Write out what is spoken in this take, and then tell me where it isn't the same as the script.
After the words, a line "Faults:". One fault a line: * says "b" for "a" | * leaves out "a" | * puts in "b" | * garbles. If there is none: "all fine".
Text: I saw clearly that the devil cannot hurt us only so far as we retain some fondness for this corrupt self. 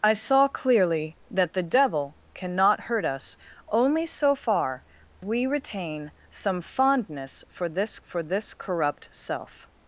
I saw clearly that the devil cannot hurt us only so far we retain some fondness for this for this corrupt self.
Faults:
* leaves out "as"
* puts in "for this"